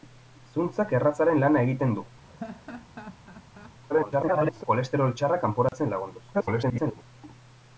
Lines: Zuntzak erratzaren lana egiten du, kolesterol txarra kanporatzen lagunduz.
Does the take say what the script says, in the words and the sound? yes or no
no